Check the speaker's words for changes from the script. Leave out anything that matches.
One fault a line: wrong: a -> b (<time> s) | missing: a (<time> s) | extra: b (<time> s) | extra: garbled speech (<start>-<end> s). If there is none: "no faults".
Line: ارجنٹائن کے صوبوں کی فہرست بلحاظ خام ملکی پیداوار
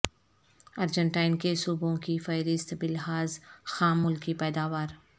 no faults